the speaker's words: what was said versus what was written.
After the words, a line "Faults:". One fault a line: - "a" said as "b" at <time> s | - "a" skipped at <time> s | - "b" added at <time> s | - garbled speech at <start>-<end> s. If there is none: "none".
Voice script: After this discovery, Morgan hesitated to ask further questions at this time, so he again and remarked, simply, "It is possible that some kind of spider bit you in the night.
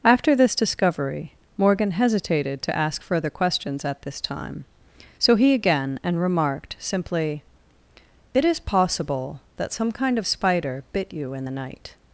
After this discovery, Morgan hesitated to ask further questions at this time, so he again and remarked, simply, "It is possible that some kind of spider bit you in the night.
Faults:
none